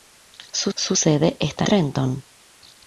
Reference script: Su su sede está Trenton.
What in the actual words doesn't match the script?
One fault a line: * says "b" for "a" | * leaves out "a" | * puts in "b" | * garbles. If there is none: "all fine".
all fine